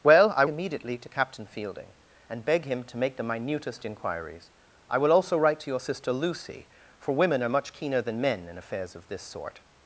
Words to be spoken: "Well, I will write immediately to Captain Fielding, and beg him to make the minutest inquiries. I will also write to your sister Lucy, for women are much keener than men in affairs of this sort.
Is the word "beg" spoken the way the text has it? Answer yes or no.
yes